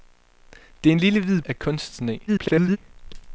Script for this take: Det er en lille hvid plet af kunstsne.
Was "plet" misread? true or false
true